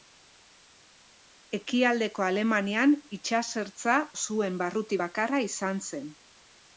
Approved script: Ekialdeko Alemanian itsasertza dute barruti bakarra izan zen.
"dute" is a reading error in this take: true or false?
true